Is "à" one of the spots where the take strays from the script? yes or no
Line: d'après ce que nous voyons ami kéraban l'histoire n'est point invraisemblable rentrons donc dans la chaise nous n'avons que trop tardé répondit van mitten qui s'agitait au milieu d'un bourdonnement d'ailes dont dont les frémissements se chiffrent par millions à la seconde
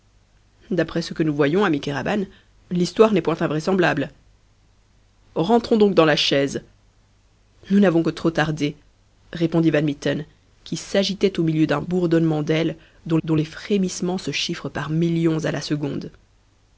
no